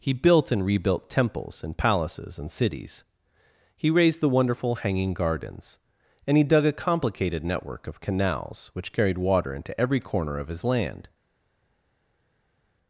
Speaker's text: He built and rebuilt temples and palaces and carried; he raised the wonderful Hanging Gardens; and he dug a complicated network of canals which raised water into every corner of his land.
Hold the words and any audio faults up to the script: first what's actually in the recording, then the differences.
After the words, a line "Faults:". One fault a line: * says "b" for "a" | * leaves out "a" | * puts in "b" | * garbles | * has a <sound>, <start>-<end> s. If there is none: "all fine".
He built and rebuilt temples and palaces and cities; he raised the wonderful Hanging Gardens; and he dug a complicated network of canals which carried water into every corner of his land.
Faults:
* says "cities" for "carried"
* says "carried" for "raised"